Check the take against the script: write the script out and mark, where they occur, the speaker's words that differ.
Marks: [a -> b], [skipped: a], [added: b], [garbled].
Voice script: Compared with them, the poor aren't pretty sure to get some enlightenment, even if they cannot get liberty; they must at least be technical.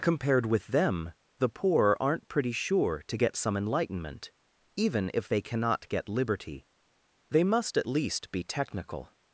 Compared with them, the poor aren't pretty sure to get some enlightenment, even if they cannot get liberty; they must at least be technical.